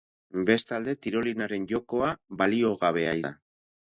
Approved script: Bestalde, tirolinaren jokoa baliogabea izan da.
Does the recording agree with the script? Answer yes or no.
no